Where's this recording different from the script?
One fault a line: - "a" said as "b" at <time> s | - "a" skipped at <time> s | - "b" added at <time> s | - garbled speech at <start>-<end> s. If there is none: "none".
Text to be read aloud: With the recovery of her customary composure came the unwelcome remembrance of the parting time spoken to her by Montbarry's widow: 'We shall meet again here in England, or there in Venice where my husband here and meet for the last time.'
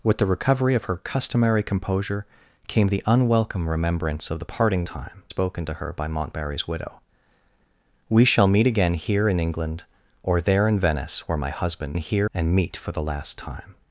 none